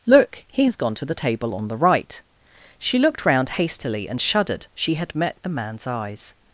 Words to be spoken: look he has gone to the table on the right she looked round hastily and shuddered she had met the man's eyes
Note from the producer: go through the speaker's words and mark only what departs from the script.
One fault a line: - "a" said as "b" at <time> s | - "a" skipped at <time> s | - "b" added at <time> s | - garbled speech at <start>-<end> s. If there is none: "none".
none